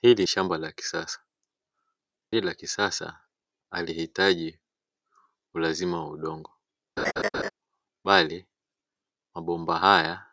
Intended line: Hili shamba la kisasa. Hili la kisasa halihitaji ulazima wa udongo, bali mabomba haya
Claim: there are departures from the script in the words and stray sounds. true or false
true